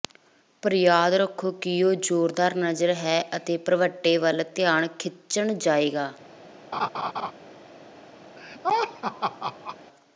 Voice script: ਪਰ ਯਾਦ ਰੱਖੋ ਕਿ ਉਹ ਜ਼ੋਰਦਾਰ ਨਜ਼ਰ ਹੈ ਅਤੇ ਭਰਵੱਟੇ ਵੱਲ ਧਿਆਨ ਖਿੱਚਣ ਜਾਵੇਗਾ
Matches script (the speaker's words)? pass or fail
pass